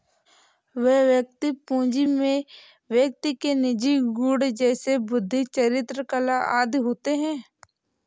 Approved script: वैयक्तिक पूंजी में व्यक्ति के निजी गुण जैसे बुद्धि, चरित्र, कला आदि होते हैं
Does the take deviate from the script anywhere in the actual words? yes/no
no